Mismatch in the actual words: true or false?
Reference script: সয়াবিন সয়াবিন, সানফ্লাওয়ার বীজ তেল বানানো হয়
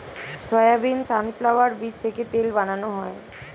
true